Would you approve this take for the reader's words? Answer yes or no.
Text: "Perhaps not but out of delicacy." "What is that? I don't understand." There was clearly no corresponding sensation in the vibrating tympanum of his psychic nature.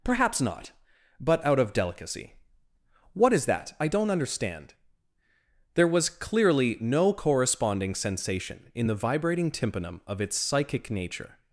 no